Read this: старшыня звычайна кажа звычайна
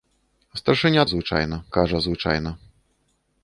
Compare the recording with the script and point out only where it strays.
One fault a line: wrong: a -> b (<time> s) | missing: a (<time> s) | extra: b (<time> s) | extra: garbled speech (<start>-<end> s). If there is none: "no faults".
no faults